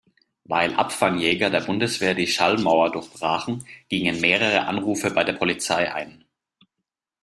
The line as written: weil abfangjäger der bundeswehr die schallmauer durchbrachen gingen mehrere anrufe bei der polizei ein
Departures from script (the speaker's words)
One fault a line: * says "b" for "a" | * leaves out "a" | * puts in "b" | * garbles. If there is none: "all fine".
all fine